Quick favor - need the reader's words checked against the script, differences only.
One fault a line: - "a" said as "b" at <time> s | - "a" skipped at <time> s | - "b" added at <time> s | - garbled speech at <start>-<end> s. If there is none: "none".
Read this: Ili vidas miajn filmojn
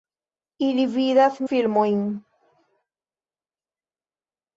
- "miajn" skipped at 1.4 s